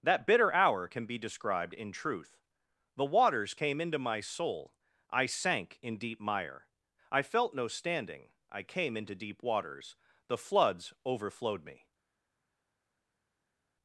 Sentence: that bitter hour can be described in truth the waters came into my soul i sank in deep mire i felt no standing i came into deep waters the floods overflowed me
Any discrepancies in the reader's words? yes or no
no